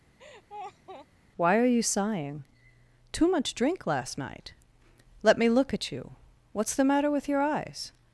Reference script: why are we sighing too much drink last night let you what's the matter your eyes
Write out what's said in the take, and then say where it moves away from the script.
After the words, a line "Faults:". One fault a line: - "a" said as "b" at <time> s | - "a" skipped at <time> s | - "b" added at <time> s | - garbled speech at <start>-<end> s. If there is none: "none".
why are you sighing too much drink last night let me look at you what's the matter with your eyes
Faults:
- "we" said as "you" at 1.6 s
- "me look at" added at 5.4 s
- "with" added at 7.1 s